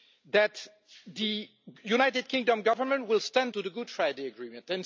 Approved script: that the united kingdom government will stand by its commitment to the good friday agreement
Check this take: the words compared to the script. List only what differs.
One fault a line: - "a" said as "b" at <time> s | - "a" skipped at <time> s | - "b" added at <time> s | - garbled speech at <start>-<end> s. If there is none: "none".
- "by its commitment" skipped at 3.5 s